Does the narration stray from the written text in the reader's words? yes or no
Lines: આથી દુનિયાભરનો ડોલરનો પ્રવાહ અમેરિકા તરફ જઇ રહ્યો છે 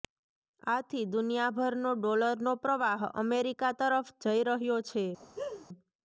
no